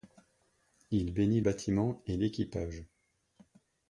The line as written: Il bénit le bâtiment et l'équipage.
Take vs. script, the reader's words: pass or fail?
fail